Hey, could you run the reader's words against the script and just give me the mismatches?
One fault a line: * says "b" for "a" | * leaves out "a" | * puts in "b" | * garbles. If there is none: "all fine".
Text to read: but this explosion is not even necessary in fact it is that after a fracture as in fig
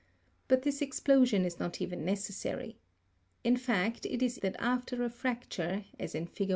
all fine